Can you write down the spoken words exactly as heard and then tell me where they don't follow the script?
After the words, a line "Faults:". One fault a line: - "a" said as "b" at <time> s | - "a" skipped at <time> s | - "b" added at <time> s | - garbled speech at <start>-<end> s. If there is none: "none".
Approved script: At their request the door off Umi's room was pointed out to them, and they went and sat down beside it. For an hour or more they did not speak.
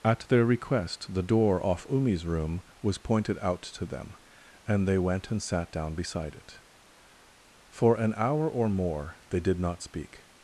At their request the door off Umi's room was pointed out to them, and they went and sat down beside it. For an hour or more they did not speak.
Faults:
none